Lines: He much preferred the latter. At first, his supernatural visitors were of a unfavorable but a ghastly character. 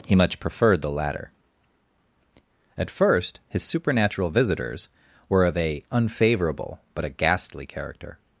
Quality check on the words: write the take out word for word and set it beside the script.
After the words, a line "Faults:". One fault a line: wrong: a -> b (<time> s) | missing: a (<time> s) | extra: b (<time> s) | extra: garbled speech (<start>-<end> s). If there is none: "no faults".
He much preferred the latter. At first, his supernatural visitors were of a unfavorable but a ghastly character.
Faults:
no faults